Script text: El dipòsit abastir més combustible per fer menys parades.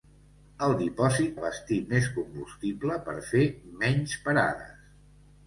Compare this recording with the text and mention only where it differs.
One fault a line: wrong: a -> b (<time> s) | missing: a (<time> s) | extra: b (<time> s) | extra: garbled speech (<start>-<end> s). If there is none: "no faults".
no faults